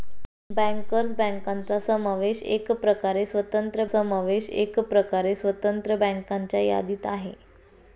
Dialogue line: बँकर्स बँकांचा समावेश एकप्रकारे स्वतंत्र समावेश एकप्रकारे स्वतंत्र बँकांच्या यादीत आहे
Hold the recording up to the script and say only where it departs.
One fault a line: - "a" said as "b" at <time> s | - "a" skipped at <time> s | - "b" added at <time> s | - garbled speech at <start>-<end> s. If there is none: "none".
none